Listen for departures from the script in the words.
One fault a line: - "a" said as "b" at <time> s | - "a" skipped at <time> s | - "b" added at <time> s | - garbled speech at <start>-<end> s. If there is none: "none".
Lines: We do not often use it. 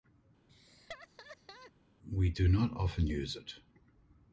none